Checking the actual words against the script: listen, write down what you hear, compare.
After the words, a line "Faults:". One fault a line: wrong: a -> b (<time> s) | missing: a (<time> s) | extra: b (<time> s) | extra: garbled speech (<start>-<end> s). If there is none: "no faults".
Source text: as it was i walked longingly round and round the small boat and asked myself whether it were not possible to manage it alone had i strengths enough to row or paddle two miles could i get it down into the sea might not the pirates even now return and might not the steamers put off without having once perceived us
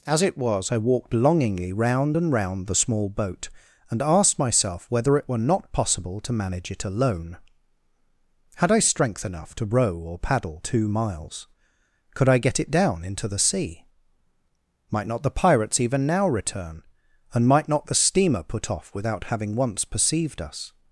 as it was i walked longingly round and round the small boat and asked myself whether it were not possible to manage it alone had i strength enough to row or paddle two miles could i get it down into the sea might not the pirates even now return and might not the steamer put off without having once perceived us
Faults:
wrong: strengths -> strength (8.8 s)
wrong: steamers -> steamer (18.0 s)